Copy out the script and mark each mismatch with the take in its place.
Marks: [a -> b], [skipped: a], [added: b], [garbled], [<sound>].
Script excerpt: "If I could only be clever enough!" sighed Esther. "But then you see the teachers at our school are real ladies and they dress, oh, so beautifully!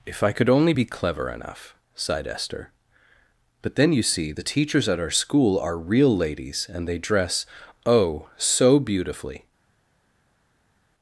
"If I could only be clever enough!" sighed Esther. "But then you see the teachers at our school are real ladies and they dress, oh, so beautifully!